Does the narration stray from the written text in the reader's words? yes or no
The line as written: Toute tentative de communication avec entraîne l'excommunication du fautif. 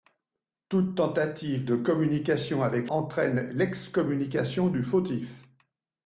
no